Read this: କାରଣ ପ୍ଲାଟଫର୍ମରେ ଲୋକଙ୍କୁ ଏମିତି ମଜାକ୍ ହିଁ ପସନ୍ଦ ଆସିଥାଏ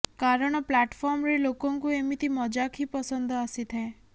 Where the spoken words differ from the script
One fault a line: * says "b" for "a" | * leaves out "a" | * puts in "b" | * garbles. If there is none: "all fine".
all fine